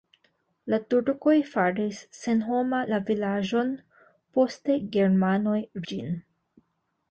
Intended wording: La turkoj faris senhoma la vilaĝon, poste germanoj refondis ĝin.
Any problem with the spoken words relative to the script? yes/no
yes